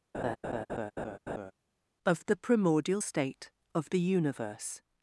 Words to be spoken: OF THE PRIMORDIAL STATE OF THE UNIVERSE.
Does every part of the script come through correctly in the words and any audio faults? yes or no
no